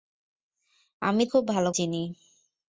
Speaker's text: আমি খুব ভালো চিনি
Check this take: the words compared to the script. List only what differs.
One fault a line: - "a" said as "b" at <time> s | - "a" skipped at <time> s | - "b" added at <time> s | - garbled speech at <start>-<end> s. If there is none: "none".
none